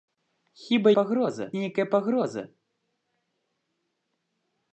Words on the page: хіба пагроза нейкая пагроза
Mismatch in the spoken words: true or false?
false